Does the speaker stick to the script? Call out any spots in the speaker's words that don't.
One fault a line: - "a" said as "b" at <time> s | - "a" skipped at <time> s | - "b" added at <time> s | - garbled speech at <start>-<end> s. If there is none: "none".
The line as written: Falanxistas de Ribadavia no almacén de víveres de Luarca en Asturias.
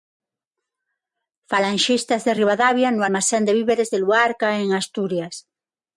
none